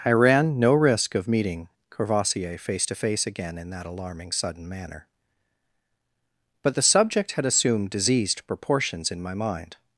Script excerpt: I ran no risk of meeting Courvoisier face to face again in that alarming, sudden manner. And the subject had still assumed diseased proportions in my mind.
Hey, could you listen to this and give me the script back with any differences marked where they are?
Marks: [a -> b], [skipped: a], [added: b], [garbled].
I ran no risk of meeting Courvoisier face to face again in that alarming, sudden manner. [And -> But] the subject had [skipped: still] assumed diseased proportions in my mind.